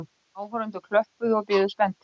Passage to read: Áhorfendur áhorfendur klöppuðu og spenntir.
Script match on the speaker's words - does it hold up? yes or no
no